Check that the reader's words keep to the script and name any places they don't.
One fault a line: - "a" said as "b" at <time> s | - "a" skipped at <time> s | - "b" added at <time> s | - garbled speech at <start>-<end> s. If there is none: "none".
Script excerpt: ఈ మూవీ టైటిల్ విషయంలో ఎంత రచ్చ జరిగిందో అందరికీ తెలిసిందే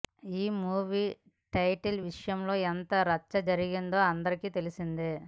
none